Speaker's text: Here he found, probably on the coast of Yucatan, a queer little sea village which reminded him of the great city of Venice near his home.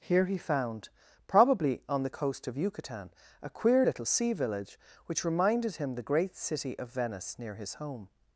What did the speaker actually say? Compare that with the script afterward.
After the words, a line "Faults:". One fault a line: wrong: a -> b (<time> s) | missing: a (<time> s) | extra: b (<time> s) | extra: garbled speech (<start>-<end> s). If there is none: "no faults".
Here he found, probably on the coast of Yucatan, a queer little sea village which reminded him the great city of Venice near his home.
Faults:
missing: of (5.9 s)